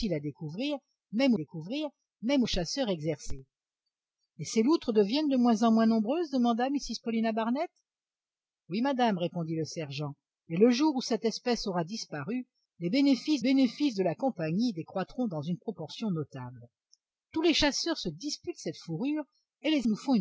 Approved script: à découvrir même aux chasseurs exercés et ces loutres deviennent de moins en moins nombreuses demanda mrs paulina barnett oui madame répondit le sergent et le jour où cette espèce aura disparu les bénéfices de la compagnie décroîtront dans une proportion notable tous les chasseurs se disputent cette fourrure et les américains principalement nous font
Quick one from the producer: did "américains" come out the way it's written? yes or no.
no